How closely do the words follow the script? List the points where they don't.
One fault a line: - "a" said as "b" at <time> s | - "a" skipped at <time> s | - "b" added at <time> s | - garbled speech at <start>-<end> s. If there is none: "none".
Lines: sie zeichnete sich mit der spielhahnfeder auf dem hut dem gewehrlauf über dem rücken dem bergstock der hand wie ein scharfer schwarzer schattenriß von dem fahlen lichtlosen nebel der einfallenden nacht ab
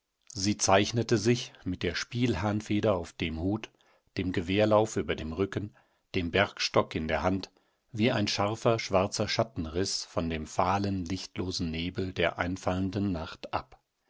- "in" added at 7.0 s